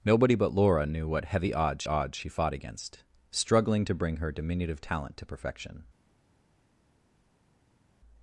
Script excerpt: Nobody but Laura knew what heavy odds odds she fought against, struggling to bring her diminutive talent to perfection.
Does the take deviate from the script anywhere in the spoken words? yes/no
no